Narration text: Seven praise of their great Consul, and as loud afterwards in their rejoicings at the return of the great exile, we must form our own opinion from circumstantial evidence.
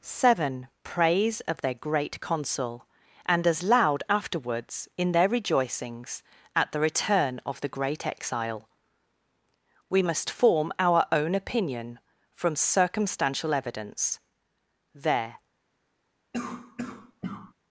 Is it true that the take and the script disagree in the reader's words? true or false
true